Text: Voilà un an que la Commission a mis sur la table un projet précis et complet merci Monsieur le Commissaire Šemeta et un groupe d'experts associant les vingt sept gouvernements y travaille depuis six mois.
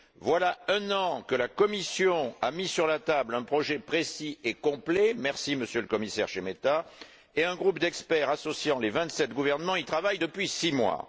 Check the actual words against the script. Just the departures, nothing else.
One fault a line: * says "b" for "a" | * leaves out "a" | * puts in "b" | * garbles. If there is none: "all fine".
all fine